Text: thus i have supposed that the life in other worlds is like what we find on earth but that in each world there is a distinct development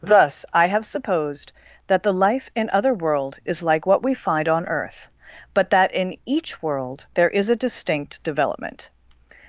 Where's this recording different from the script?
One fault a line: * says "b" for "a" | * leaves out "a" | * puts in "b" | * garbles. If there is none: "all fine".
* says "world" for "worlds"